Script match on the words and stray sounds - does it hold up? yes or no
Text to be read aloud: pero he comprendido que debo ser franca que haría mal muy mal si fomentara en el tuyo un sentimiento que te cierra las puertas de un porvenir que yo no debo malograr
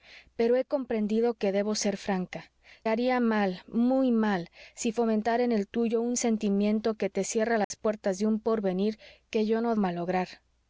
no